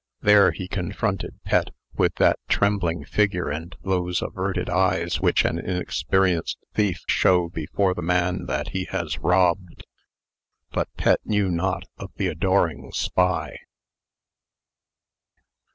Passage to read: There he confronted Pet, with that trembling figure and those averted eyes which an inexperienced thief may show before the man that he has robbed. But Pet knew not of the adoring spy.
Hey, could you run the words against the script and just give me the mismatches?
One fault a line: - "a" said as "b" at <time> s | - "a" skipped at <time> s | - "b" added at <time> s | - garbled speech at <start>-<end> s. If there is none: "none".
- "may" skipped at 7.0 s